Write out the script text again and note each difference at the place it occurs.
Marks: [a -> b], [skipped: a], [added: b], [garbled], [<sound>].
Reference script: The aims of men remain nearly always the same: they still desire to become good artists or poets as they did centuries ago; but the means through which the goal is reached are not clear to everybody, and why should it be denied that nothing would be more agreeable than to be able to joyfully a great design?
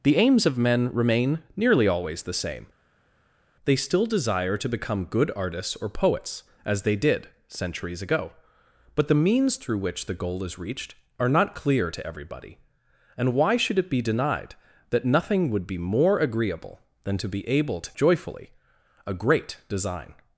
The aims of men remain nearly always the same: they still desire to become good artists or poets as they did centuries ago; but the means through which the goal is reached are not clear to everybody, and why should it be denied that nothing would be more agreeable than to be able to joyfully a great design?